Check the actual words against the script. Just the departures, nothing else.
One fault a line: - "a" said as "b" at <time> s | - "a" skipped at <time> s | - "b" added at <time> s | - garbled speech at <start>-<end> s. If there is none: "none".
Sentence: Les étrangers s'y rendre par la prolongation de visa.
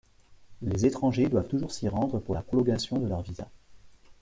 - "doivent toujours" added at 1.3 s
- "par" said as "pour" at 2.2 s
- "leur" added at 3.1 s